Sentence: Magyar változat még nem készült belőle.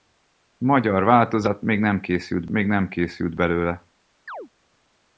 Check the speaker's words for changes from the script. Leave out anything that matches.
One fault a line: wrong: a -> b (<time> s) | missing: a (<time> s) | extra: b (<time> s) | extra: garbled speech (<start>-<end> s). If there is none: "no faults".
extra: még nem készült (2.5 s)